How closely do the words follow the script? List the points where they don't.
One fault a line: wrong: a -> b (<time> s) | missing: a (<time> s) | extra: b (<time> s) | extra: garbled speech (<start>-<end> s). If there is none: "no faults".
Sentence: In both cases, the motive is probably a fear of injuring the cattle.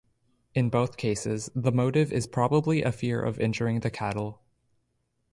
no faults